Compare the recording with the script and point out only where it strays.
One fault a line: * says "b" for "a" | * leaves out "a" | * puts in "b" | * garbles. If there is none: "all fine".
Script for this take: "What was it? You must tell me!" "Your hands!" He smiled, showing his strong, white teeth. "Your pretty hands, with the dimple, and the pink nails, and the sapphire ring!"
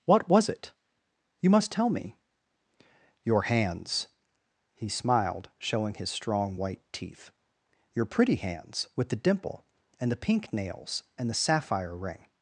all fine